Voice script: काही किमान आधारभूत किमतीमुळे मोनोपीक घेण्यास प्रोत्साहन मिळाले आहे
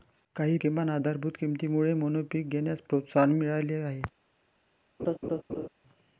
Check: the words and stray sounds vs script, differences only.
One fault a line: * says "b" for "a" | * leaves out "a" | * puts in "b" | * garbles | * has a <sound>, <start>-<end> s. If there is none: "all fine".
* has a laugh, 5.0-5.7 s